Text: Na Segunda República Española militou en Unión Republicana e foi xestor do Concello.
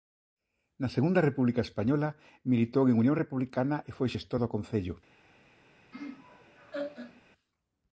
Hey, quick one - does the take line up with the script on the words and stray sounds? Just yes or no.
no